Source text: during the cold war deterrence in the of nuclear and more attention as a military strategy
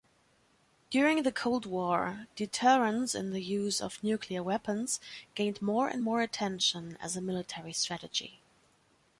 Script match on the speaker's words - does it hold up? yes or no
no